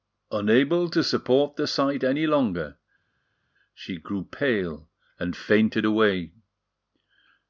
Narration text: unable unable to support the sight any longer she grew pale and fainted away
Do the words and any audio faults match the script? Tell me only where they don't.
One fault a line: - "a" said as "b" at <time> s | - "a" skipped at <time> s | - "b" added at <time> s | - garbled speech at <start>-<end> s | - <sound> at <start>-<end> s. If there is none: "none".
- "unable" skipped at 0.9 s